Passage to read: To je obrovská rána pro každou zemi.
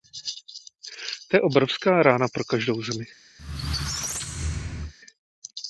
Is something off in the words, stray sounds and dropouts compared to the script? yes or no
yes